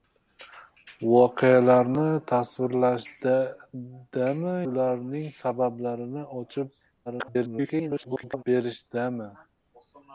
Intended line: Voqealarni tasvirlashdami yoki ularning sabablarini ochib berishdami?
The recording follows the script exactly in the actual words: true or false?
false